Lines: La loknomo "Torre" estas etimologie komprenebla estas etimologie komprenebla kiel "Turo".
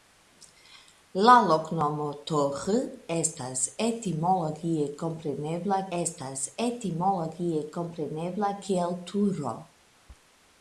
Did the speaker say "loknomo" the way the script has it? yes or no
yes